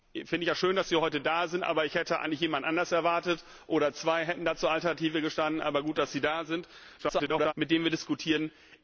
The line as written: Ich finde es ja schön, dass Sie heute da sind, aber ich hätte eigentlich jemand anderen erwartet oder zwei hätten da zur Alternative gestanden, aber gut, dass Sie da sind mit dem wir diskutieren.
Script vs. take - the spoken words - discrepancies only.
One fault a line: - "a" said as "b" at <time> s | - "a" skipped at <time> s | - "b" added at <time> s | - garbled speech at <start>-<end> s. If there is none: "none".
- garbled speech at 7.0-7.5 s